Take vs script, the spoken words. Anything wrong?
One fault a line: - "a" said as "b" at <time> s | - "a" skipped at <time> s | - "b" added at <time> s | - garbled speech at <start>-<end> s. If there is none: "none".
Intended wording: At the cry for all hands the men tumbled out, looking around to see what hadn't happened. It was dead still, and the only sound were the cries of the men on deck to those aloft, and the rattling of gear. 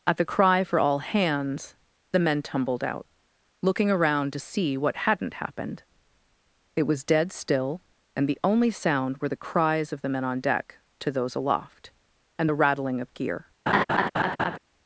none